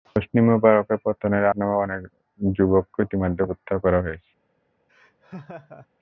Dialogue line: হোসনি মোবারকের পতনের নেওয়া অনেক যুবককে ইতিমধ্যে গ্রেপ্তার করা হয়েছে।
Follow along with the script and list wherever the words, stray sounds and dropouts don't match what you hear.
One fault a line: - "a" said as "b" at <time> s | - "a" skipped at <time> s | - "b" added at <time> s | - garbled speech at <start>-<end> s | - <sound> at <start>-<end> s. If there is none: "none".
- laugh at 4.9-5.9 s